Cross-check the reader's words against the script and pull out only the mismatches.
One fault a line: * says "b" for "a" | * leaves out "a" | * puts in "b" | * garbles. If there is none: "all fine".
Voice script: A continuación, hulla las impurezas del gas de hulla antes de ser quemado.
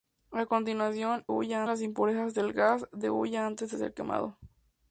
all fine